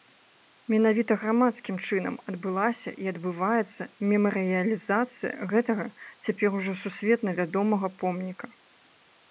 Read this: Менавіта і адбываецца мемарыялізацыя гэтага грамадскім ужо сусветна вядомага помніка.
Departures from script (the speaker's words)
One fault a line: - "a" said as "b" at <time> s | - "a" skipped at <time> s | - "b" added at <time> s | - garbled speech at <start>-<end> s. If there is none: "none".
- "грамадскім чынам адбылася" added at 1.2 s
- "грамадскім" said as "цяпер" at 6.3 s